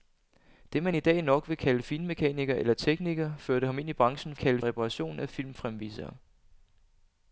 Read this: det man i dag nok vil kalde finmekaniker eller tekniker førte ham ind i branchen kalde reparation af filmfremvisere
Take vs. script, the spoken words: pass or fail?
pass